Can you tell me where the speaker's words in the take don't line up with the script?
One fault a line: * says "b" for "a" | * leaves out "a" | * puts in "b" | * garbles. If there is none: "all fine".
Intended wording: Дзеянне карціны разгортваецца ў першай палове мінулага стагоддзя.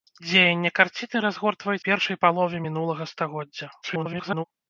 * leaves out "ў"
* garbles